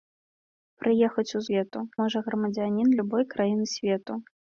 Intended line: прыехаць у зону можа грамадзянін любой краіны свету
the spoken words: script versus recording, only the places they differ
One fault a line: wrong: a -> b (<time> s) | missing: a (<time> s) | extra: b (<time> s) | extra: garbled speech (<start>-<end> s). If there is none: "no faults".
wrong: зону -> свету (1.5 s)